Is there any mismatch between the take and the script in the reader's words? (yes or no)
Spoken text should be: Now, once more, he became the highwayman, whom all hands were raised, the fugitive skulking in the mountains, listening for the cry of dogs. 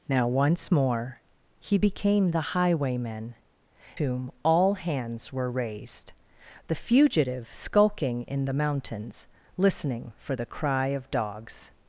no